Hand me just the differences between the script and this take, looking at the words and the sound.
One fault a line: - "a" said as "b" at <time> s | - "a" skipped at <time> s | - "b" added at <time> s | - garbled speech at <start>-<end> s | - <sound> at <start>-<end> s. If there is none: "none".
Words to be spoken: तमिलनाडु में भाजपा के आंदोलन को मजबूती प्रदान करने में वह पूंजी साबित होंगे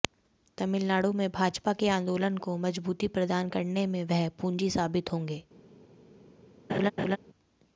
- laugh at 6.7-7.2 s